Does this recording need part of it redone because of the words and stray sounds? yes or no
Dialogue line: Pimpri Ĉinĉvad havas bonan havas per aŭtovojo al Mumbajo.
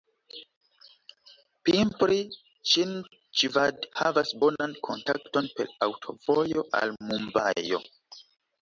yes